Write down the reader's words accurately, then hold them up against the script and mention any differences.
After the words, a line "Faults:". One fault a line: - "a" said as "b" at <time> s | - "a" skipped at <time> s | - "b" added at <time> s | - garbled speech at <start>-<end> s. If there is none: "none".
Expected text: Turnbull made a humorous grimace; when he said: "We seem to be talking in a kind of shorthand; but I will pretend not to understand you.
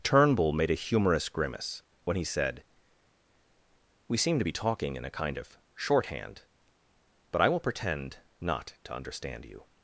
Turnbull made a humorous grimace; when he said: "We seem to be talking in a kind of shorthand; but I will pretend not to understand you.
Faults:
none